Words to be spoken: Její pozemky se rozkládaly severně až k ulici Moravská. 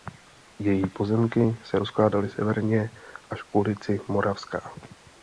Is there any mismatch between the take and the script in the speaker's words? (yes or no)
no